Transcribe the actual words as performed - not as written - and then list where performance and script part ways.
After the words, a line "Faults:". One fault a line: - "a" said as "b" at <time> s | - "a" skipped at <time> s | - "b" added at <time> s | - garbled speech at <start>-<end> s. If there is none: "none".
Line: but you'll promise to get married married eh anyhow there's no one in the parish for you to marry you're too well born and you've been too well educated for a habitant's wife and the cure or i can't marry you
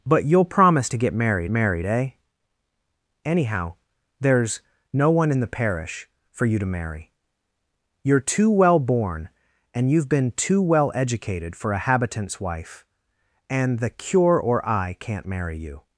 but you'll promise to get married married eh anyhow there's no one in the parish for you to marry you're too well born and you've been too well educated for a habitant's wife and the cure or i can't marry you
Faults:
none